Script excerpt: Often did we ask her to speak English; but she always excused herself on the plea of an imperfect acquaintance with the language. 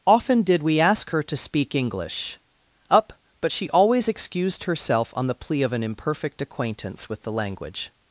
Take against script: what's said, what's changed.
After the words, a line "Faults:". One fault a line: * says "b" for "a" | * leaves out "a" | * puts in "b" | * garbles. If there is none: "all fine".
Often did we ask her to speak English; up but she always excused herself on the plea of an imperfect acquaintance with the language.
Faults:
* puts in "up"